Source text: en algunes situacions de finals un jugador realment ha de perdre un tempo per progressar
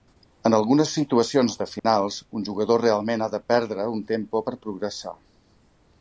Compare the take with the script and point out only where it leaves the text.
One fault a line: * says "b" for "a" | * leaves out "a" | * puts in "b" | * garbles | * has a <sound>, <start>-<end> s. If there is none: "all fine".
* has a dropout, 1.8-1.8 s